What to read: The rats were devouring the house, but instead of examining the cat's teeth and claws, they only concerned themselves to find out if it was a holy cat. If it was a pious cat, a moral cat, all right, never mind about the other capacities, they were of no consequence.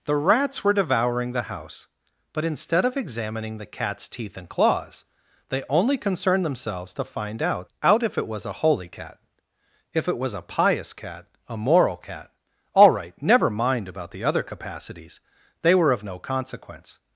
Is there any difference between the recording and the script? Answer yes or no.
yes